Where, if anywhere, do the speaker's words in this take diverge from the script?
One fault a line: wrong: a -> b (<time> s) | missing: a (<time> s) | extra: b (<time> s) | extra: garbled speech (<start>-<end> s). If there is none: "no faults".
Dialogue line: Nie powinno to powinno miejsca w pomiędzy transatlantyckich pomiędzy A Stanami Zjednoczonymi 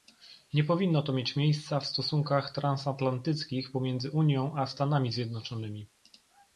wrong: powinno -> mieć (1.1 s)
wrong: pomiędzy -> stosunkach (1.9 s)
extra: Unią (4.1 s)